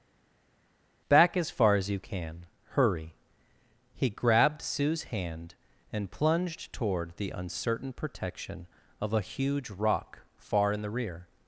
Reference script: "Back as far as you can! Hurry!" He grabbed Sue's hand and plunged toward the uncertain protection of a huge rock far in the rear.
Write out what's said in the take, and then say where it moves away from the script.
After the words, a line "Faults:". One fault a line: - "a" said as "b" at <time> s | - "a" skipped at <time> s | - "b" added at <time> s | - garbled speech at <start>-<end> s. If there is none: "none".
"Back as far as you can! Hurry!" He grabbed Sue's hand and plunged toward the uncertain protection of a huge rock far in the rear.
Faults:
none